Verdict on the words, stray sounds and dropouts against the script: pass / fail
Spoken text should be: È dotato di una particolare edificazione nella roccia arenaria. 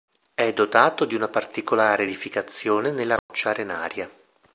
fail